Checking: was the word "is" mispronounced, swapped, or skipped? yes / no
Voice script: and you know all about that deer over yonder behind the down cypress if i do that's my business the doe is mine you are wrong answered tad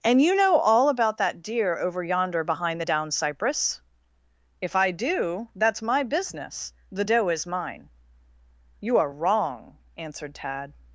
no